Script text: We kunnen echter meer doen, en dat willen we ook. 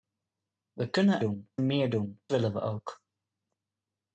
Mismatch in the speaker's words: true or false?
true